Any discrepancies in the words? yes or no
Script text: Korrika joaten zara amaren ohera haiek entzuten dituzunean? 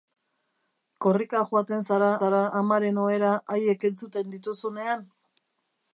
yes